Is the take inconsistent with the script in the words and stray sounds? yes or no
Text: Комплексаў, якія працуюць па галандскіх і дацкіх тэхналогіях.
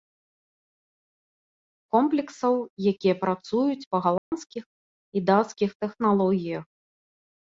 yes